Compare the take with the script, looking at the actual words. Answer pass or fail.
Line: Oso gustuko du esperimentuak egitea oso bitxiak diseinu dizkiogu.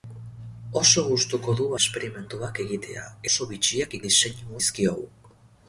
pass